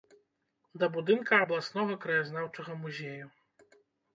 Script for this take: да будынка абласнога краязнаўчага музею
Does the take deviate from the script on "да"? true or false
false